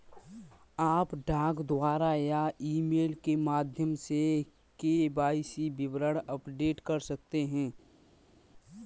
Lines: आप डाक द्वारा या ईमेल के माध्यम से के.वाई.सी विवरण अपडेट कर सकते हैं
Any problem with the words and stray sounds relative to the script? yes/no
no